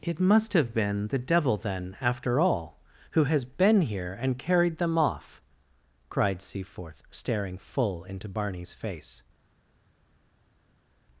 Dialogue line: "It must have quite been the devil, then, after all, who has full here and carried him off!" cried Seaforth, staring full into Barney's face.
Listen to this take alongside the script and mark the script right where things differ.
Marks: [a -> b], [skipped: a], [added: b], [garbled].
"It must have [skipped: quite] been the devil, then, after all, who has [full -> been] here and carried [him -> them] off!" cried Seaforth, staring full into Barney's face.